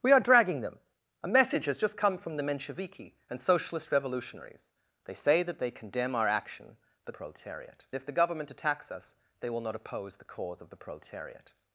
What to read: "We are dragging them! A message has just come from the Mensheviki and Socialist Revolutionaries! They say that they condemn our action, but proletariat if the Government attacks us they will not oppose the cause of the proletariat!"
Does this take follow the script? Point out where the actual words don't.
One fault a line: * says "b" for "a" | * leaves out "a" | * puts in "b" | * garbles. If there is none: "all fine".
all fine